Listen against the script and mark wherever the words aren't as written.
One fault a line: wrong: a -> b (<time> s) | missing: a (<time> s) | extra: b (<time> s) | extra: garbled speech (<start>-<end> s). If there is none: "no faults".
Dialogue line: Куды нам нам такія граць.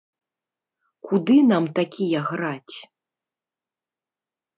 missing: нам (1.6 s)